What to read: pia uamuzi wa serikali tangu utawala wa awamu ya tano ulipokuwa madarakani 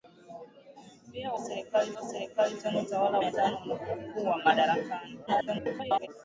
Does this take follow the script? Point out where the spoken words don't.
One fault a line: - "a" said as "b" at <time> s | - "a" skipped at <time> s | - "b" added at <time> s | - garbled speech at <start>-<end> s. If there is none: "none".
- "uamuzi" said as "serikali" at 1.4 s
- "wa awamu" skipped at 3.2 s
- garbled speech at 5.3-6.1 s